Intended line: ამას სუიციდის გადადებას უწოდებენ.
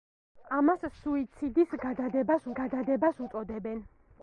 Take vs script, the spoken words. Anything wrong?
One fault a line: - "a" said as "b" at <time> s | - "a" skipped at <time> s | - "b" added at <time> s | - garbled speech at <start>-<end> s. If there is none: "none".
- "გადადებას" added at 2.6 s